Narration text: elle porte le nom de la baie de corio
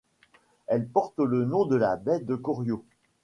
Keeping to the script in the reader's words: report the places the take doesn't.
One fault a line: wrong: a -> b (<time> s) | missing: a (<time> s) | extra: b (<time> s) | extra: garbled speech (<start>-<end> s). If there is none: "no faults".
no faults